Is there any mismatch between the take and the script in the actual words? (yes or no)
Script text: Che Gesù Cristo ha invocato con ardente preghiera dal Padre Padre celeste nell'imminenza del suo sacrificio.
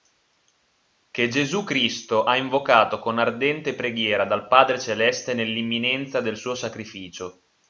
yes